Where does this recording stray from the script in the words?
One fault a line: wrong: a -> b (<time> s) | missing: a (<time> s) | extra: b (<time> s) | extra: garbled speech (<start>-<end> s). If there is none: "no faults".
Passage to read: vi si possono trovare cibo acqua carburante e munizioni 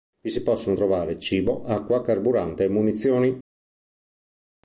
no faults